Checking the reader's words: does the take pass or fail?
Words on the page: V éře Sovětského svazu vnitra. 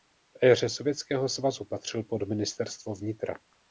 fail